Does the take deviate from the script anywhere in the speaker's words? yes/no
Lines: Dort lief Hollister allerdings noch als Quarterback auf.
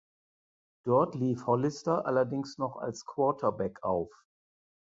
no